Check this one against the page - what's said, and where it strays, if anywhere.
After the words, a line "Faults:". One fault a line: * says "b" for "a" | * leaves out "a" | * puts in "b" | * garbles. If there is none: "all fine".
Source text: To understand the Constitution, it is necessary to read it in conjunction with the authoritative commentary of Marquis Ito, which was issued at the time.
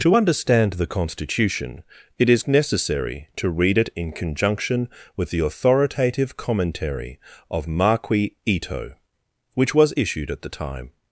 To understand the Constitution, it is necessary to read it in conjunction with the authoritative commentary of Marquis Ito, which was issued at the time.
Faults:
all fine